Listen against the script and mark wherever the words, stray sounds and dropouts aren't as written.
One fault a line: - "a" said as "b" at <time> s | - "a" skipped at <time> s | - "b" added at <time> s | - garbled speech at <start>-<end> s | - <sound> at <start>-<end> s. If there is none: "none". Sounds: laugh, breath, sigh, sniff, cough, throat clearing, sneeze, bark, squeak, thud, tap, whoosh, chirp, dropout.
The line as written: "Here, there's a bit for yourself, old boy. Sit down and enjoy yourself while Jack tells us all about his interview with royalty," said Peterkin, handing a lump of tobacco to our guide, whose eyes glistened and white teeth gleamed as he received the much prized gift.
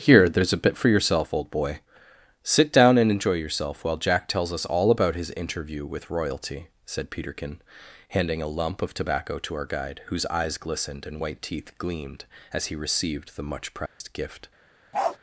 - dropout at 13.9-14.0 s
- bark at 14.9-15.2 s